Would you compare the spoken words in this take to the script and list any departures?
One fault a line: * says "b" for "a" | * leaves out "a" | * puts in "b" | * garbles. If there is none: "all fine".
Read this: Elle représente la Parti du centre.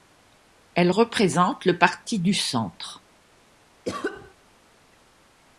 * says "le" for "la"